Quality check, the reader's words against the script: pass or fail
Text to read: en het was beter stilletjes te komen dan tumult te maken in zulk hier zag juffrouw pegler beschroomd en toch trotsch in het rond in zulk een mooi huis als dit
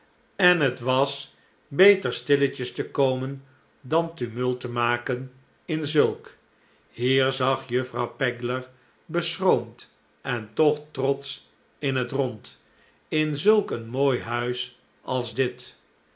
pass